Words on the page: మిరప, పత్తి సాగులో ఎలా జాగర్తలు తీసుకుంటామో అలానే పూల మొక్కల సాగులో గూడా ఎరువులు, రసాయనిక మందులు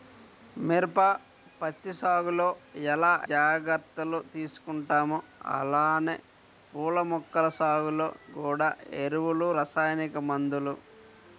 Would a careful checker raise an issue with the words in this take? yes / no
no